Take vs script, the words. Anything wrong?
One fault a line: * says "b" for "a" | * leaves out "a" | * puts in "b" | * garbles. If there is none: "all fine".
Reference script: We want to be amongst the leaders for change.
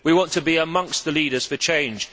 all fine